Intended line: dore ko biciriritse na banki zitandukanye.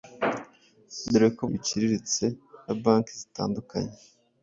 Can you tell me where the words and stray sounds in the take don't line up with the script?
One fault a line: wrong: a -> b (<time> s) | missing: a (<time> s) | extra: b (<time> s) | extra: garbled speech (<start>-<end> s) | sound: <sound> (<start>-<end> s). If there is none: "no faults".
no faults